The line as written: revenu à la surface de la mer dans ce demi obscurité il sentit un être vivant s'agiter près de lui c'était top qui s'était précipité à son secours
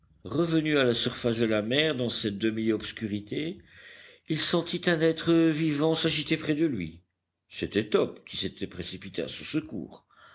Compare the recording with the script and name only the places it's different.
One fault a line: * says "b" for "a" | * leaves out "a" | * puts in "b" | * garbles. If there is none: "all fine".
* says "cette" for "ce"